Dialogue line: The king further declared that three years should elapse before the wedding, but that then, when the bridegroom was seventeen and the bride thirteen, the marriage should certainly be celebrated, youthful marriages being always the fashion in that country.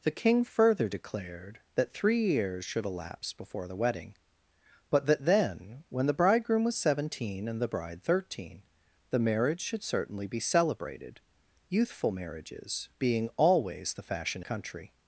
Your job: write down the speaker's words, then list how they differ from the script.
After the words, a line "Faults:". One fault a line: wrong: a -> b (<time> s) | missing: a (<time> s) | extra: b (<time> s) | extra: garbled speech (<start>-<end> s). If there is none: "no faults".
The king further declared that three years should elapse before the wedding, but that then, when the bridegroom was seventeen and the bride thirteen, the marriage should certainly be celebrated, youthful marriages being always the fashion country.
Faults:
missing: in that (14.4 s)